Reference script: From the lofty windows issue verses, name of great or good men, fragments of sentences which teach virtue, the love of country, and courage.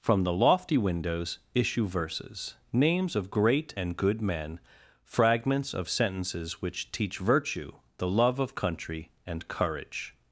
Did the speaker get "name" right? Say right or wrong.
wrong